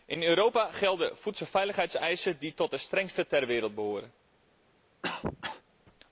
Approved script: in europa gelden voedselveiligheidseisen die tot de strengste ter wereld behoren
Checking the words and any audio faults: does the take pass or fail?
fail